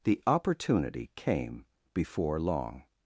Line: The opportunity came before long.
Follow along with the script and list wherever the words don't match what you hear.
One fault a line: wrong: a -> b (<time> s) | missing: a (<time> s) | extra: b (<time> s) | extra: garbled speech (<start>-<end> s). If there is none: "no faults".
no faults